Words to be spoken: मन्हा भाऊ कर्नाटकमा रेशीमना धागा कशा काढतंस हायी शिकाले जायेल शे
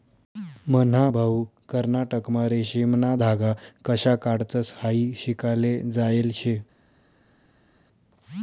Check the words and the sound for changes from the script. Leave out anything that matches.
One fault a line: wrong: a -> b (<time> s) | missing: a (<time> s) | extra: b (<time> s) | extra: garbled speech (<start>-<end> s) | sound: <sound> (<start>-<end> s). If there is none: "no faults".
no faults